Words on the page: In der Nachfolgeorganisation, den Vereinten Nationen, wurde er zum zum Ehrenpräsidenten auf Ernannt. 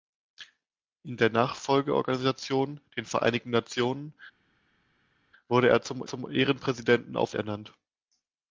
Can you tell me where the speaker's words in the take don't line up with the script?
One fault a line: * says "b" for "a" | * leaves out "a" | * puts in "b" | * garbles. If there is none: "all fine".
all fine